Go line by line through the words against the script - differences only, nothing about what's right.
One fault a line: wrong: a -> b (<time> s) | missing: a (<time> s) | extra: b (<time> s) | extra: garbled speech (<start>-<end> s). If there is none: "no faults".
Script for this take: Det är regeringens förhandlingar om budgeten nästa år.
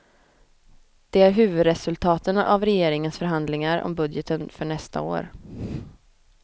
extra: huvudresultaten av (1.3 s)
extra: för (4.5 s)